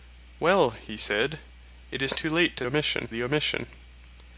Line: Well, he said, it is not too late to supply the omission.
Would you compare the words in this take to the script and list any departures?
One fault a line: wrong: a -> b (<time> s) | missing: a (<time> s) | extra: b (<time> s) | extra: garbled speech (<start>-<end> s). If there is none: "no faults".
missing: not (2.2 s)
wrong: supply -> omission (2.6 s)